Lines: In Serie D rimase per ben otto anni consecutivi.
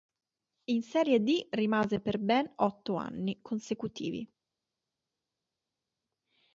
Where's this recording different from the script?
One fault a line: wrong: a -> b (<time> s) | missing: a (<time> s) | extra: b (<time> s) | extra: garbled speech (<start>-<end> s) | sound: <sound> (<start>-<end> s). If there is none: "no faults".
no faults